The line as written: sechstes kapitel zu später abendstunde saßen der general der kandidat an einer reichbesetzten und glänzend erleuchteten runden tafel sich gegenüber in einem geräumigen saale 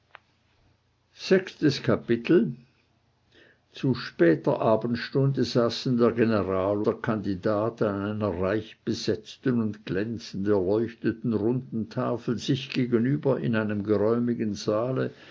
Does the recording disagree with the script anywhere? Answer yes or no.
no